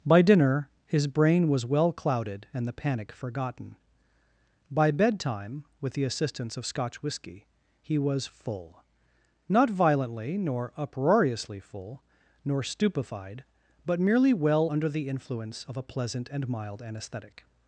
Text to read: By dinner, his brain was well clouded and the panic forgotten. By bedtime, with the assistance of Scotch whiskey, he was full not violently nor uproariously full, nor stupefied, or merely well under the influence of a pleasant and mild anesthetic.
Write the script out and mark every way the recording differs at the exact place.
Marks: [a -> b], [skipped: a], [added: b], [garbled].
By dinner, his brain was well clouded and the panic forgotten. By bedtime, with the assistance of Scotch whiskey, he was full not violently nor uproariously full, nor stupefied, [or -> but] merely well under the influence of a pleasant and mild anesthetic.